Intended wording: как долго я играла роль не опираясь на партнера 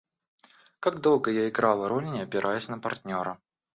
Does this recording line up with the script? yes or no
yes